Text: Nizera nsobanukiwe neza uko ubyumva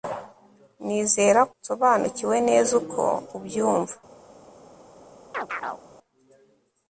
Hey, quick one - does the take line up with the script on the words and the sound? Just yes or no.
no